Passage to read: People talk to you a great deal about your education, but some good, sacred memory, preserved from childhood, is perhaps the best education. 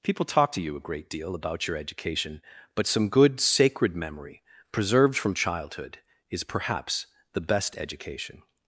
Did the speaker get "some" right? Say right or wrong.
right